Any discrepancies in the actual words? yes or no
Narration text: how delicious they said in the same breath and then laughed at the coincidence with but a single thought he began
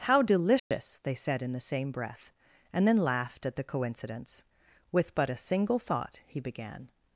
no